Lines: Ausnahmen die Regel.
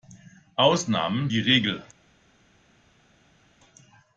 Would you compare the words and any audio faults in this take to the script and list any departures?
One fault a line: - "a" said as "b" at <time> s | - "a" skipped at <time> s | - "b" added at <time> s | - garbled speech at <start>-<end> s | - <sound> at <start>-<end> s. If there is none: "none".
none